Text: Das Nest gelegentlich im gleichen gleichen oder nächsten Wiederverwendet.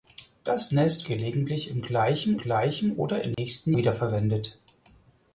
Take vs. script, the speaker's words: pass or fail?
pass